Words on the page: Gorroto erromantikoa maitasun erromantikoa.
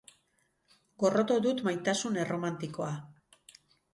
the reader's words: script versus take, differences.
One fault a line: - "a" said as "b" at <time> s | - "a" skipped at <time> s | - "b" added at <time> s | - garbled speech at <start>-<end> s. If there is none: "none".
- "erromantikoa" said as "dut" at 1.4 s